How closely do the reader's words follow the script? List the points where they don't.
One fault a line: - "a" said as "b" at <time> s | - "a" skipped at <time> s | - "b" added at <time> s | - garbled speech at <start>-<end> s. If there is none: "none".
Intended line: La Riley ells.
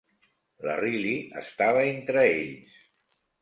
- "estava entre" added at 1.4 s